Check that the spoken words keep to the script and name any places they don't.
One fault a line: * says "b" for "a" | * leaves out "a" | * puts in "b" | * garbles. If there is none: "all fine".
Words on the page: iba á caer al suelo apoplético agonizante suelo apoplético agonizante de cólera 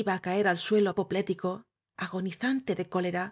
* leaves out "suelo apoplético agonizante"